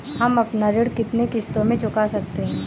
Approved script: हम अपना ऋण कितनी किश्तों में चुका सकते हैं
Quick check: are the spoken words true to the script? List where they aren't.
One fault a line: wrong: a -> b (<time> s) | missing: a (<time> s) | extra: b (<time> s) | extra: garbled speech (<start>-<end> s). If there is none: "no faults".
no faults